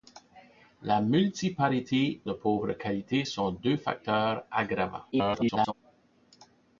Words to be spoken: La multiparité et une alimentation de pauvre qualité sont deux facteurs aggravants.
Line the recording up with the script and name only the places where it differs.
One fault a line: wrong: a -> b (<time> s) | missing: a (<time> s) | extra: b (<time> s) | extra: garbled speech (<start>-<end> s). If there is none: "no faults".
missing: et une alimentation (2.2 s)
extra: garbled speech (5.1-5.7 s)